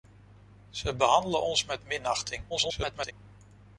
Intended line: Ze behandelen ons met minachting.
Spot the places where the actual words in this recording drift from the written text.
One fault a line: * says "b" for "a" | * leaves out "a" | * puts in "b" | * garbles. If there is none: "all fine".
* garbles